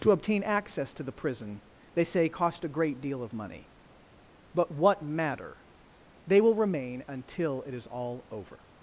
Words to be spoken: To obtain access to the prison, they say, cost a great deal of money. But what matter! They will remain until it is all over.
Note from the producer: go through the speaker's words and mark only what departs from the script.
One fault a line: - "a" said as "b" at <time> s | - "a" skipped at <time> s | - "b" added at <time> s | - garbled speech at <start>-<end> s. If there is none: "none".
none